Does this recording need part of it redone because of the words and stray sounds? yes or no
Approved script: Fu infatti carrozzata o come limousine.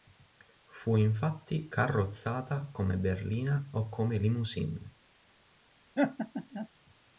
yes